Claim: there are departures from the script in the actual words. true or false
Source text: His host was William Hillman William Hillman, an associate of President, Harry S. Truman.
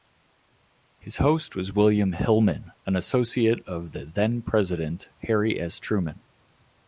true